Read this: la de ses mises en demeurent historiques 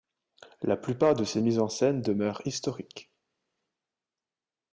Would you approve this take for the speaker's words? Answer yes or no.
no